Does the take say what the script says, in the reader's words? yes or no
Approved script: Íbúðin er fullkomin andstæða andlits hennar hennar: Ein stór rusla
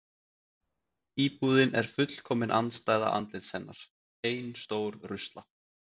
no